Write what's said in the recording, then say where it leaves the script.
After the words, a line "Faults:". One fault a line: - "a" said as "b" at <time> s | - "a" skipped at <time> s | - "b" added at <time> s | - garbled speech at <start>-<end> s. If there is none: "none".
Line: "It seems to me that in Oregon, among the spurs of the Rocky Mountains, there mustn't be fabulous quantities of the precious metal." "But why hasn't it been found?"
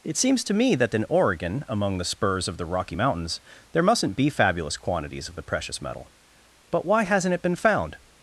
"It seems to me that in Oregon, among the spurs of the Rocky Mountains, there mustn't be fabulous quantities of the precious metal." "But why hasn't it been found?"
Faults:
none